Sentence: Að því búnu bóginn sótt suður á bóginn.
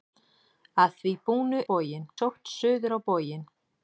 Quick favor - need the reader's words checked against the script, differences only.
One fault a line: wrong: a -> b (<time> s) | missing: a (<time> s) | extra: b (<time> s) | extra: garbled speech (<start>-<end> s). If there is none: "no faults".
no faults